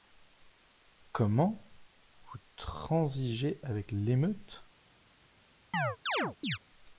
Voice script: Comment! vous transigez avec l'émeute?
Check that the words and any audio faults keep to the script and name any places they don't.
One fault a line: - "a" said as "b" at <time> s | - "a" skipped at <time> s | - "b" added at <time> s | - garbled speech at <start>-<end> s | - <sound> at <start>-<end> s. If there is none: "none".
- chirp at 5.7-6.6 s